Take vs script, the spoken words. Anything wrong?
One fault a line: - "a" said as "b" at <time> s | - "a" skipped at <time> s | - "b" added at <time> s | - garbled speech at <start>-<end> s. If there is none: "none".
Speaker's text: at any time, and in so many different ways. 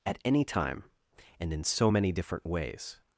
none